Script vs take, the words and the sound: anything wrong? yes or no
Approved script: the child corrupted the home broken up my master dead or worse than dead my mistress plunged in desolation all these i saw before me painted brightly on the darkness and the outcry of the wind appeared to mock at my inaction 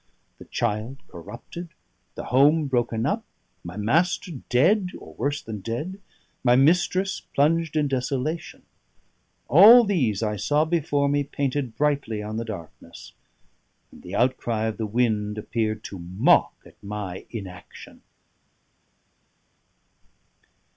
no